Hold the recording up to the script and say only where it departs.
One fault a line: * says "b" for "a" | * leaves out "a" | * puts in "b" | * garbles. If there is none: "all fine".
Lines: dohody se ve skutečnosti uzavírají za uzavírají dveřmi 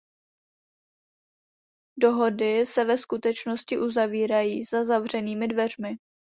* says "zavřenými" for "uzavírají"